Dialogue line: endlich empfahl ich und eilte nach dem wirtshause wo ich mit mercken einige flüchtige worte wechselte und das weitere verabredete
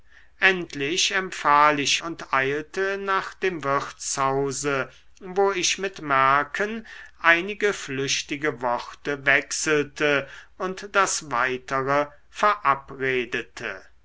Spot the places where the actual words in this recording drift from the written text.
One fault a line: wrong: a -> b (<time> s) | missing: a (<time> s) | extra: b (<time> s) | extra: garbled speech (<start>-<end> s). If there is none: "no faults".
no faults